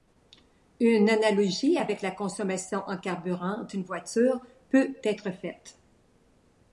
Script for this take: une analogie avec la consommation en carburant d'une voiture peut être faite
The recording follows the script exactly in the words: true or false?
true